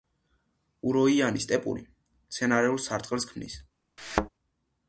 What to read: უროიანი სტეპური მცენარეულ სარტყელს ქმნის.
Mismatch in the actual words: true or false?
false